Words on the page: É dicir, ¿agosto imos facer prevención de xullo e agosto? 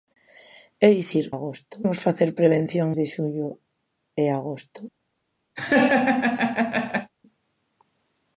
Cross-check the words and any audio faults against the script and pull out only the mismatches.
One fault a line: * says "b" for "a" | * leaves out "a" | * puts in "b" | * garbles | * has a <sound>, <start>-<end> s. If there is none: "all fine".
* has a laugh, 5.6-7.1 s